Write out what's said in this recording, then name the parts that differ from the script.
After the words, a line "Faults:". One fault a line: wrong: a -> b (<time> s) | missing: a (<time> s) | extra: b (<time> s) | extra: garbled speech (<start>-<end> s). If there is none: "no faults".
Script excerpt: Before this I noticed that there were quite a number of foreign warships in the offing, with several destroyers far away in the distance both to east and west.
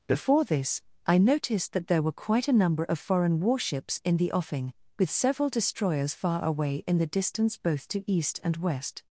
Before this I noticed that there were quite a number of foreign warships in the offing, with several destroyers far away in the distance both to east and west.
Faults:
no faults